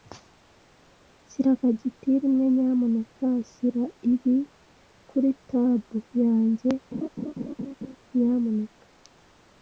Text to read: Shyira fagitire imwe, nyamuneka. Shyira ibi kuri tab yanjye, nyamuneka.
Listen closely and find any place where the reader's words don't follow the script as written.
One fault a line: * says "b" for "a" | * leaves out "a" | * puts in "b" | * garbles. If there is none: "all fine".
all fine